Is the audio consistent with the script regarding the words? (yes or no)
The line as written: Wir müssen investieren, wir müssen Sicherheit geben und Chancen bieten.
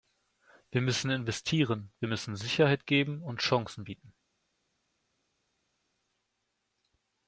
yes